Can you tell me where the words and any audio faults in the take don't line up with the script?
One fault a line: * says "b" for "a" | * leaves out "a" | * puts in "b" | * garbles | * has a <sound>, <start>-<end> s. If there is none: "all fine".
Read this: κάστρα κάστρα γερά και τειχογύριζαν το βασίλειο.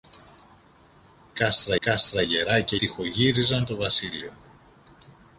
all fine